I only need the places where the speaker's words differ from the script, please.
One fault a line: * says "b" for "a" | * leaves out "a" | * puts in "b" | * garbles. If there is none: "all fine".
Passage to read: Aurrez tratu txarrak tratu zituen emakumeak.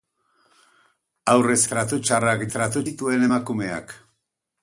all fine